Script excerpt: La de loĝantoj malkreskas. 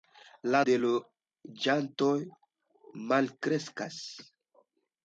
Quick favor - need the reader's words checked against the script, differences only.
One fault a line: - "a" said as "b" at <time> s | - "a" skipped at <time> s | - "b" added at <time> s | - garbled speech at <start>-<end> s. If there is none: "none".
none